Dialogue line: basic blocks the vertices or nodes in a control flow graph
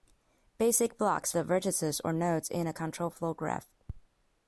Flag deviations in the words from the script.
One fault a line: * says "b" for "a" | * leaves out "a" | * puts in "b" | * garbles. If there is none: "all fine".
all fine